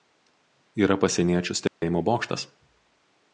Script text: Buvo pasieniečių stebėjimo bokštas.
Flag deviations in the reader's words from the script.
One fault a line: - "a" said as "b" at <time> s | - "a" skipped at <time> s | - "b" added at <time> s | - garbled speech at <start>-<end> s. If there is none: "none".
- "Buvo" said as "Yra" at 0.8 s